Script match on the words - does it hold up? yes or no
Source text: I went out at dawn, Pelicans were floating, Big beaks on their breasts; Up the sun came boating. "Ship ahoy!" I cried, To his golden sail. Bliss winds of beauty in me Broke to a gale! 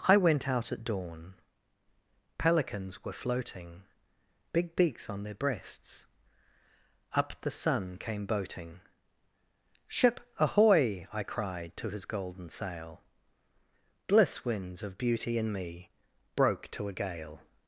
yes